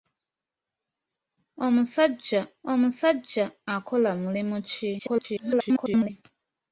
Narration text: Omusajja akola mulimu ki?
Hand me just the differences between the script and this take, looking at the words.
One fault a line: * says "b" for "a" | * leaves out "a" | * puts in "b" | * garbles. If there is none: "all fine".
* puts in "omusajja"
* garbles